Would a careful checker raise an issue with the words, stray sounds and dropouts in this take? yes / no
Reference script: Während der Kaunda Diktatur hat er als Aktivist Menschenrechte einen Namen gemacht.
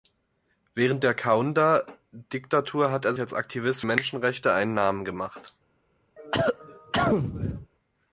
yes